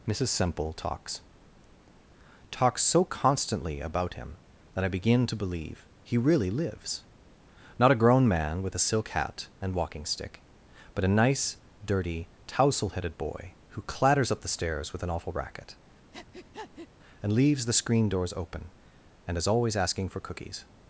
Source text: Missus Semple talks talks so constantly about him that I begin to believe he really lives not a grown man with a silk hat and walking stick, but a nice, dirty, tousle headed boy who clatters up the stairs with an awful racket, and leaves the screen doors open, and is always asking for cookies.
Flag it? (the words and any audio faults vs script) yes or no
yes